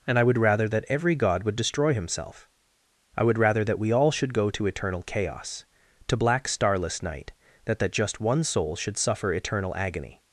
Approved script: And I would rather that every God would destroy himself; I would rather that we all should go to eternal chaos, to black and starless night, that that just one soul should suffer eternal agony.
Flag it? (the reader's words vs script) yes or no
yes